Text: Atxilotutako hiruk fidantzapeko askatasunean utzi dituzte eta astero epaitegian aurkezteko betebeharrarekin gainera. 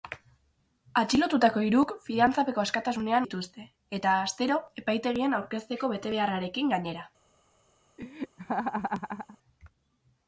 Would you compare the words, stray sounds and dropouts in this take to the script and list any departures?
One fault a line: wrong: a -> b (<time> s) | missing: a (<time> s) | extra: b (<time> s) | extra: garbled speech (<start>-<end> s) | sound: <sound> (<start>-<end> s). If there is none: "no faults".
missing: utzi (3.3 s)
sound: laugh (8.0-9.4 s)